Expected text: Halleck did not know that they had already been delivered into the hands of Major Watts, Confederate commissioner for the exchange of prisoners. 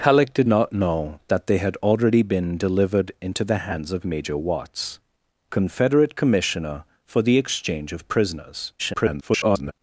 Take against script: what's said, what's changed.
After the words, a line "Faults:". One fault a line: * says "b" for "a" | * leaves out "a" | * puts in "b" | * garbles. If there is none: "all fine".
Halleck did not know that they had already been delivered into the hands of Major Watts, Confederate commissioner for the exchange of prisoners. [garbled]
Faults:
* garbles